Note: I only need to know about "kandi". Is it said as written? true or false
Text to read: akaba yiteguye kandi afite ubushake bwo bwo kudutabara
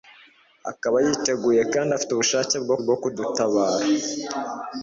true